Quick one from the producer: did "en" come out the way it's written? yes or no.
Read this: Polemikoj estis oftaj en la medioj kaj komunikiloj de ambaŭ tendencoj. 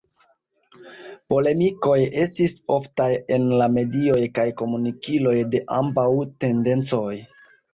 yes